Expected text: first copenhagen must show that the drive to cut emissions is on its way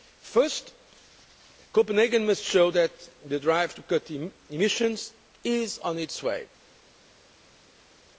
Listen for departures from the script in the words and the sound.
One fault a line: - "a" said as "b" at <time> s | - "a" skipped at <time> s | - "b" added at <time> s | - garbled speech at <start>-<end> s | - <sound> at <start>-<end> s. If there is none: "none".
none